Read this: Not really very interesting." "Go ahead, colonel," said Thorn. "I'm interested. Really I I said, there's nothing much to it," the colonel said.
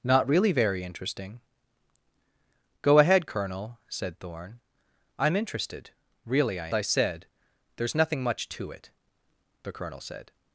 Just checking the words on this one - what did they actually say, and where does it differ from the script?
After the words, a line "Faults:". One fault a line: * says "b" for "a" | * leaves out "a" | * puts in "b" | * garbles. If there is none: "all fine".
Not really very interesting." "Go ahead, colonel," said Thorn. "I'm interested. Really I I said, there's nothing much to it," the colonel said.
Faults:
all fine